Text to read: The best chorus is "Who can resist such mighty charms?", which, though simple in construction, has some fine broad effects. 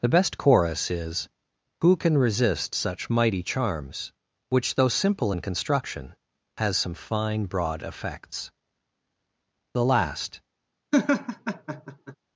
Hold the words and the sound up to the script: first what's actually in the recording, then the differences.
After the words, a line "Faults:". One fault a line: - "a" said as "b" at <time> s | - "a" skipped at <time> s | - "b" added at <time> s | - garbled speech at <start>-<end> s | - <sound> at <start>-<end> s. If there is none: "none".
The best chorus is "Who can resist such mighty charms?", which, though simple in construction, has some fine broad effects. The last
Faults:
- "The last" added at 9.7 s
- laugh at 10.9-12.2 s